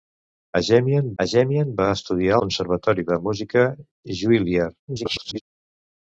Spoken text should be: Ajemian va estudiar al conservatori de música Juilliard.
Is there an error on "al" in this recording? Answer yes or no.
yes